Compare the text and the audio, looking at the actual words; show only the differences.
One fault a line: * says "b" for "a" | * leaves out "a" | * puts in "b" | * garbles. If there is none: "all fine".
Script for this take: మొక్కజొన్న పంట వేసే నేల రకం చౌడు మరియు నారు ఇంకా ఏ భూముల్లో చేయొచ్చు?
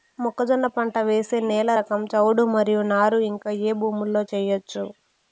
all fine